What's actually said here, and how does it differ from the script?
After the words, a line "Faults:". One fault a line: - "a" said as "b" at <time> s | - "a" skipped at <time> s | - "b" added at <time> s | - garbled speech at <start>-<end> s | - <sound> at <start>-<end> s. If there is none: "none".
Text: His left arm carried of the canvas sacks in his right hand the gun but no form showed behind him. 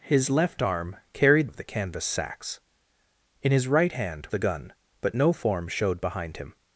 His left arm carried of the canvas sacks in his right hand the gun but no form showed behind him.
Faults:
none